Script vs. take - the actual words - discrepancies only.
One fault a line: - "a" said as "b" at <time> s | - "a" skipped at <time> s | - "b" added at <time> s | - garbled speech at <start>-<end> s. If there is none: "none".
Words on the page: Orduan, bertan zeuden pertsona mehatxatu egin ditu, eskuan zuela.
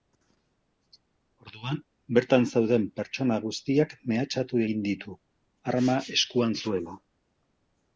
- "guztiak" added at 3.5 s
- "arma" added at 5.7 s